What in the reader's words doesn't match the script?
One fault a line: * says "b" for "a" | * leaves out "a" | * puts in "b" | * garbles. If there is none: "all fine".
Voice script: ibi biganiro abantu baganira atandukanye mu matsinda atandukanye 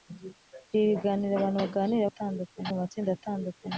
all fine